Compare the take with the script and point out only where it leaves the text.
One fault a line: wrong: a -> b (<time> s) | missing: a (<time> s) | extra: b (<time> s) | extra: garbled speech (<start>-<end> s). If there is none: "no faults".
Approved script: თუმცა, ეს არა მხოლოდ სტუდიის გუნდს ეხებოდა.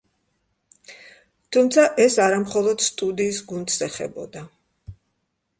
no faults